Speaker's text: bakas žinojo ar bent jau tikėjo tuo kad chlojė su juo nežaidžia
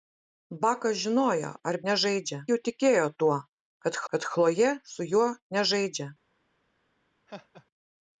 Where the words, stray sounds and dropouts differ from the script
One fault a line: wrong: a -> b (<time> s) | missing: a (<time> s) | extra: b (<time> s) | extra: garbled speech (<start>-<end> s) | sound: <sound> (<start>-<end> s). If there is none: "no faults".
wrong: bent -> nežaidžia (1.9 s)
extra: kad (4.1 s)
sound: laugh (7.3-7.7 s)